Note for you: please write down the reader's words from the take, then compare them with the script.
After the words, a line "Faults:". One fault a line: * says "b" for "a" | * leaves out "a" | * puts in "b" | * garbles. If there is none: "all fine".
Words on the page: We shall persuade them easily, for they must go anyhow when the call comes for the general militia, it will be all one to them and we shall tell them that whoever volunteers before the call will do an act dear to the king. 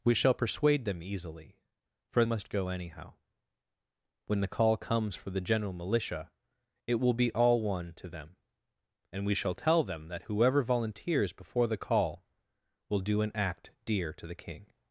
We shall persuade them easily, for must go anyhow when the call comes for the general militia, it will be all one to them and we shall tell them that whoever volunteers before the call will do an act dear to the king.
Faults:
* leaves out "they"